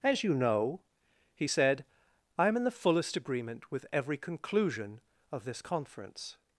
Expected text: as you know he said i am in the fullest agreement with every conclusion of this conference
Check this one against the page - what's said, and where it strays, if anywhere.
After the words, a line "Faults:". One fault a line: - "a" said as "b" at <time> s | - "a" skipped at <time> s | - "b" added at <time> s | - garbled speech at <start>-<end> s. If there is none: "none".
as you know he said i am in the fullest agreement with every conclusion of this conference
Faults:
none